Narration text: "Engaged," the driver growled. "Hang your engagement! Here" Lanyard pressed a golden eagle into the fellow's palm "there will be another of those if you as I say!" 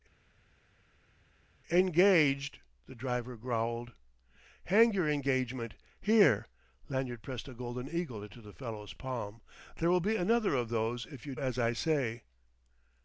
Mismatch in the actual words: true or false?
false